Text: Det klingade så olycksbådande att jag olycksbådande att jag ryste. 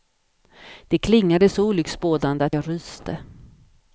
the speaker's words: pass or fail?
fail